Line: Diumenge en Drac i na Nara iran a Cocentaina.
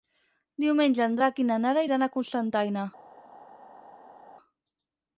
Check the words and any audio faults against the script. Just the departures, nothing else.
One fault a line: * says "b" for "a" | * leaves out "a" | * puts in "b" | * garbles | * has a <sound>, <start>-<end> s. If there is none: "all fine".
all fine